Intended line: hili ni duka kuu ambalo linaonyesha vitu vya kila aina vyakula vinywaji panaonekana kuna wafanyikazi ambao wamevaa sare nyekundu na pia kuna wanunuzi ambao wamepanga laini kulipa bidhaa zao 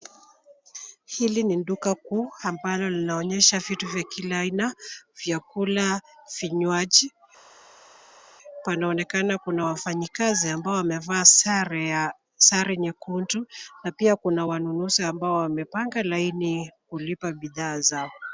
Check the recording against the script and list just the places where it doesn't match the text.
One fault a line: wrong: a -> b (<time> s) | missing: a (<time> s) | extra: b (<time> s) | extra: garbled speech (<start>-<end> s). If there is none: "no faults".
no faults